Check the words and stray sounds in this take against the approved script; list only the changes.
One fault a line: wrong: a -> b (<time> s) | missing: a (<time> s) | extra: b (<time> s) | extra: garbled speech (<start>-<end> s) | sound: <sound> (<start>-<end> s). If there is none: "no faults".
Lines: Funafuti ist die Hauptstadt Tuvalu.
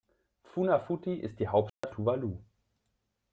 sound: dropout (1.7-1.8 s)